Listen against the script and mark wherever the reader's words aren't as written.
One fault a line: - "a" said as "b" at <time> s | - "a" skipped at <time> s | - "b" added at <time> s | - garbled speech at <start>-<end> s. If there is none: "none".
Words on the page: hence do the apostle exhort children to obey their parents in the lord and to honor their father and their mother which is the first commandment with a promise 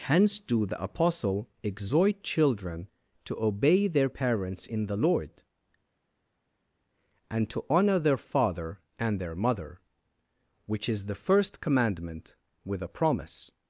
none